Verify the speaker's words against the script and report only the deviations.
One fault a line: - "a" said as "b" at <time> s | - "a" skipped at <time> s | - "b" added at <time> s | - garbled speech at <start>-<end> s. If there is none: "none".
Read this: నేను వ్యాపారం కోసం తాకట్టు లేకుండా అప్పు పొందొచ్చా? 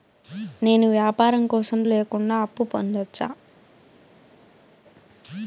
- "తాకట్టు" skipped at 1.8 s